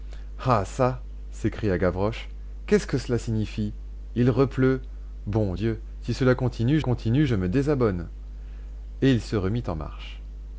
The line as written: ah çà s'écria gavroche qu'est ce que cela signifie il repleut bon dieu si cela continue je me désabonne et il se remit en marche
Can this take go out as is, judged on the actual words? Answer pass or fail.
fail